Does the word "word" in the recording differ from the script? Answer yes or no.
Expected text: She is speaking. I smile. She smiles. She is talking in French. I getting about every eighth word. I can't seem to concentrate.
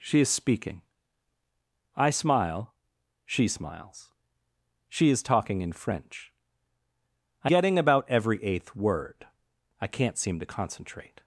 no